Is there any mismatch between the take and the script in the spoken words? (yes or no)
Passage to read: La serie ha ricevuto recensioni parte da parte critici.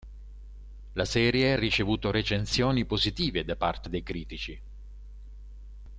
yes